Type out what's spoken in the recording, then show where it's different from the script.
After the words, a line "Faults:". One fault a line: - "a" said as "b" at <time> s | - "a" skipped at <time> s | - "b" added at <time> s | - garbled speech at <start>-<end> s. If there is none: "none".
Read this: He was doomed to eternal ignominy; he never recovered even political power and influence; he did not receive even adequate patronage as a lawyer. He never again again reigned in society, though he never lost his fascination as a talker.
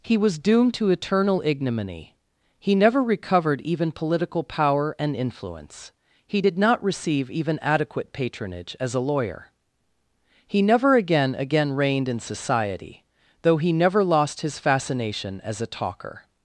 He was doomed to eternal ignominy; he never recovered even political power and influence; he did not receive even adequate patronage as a lawyer. He never again again reigned in society, though he never lost his fascination as a talker.
Faults:
none